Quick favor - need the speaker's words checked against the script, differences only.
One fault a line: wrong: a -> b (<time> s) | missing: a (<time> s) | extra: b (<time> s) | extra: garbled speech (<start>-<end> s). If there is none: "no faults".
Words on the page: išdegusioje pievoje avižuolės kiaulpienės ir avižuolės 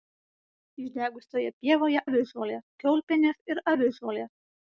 no faults